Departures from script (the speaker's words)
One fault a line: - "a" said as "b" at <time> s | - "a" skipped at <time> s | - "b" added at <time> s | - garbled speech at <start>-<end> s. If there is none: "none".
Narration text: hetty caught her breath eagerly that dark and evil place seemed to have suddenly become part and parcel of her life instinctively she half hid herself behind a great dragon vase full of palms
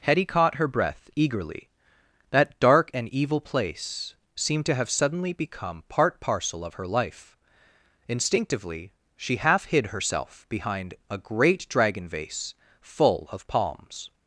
- "and" skipped at 6.2 s